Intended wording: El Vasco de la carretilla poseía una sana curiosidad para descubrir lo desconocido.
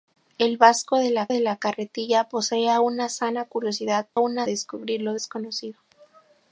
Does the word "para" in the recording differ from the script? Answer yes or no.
yes